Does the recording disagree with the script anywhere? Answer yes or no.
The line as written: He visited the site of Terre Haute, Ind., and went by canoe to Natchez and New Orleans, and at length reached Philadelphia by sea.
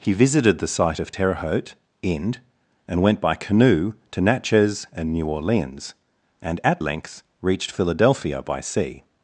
no